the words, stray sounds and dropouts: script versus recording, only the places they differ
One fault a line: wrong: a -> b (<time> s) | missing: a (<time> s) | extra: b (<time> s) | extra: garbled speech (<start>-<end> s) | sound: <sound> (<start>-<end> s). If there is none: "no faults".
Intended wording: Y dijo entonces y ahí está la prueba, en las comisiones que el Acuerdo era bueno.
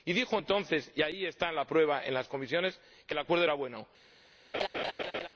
sound: laugh (4.5-5.3 s)